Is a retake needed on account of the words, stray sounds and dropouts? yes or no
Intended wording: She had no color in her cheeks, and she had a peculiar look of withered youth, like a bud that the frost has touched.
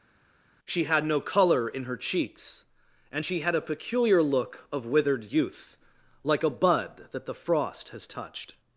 no